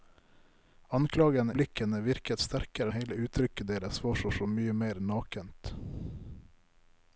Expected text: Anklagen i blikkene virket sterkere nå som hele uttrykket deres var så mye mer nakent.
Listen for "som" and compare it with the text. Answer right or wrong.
wrong